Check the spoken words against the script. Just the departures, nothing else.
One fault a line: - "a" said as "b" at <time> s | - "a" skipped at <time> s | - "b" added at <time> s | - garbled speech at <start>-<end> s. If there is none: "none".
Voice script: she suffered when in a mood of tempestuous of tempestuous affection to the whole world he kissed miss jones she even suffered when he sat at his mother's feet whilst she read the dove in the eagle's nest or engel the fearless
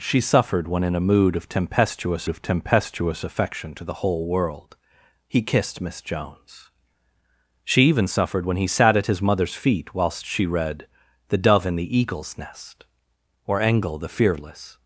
none